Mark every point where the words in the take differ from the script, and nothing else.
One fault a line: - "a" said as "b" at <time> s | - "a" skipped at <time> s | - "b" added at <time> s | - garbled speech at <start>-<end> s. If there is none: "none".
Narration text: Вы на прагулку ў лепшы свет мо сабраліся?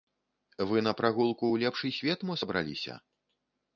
none